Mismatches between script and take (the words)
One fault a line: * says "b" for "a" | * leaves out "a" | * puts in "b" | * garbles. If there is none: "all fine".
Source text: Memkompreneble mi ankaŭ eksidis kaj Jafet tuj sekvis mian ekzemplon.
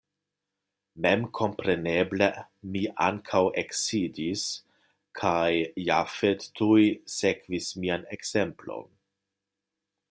all fine